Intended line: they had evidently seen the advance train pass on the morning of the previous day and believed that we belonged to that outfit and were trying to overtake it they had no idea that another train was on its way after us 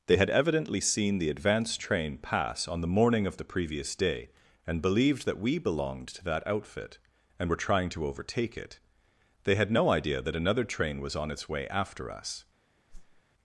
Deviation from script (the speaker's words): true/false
false